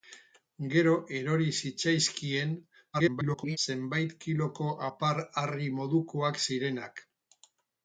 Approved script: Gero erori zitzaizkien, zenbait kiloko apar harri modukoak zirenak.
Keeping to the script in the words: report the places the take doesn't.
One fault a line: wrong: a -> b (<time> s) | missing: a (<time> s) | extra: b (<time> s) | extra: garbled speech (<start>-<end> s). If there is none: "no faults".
extra: garbled speech (2.9-3.6 s)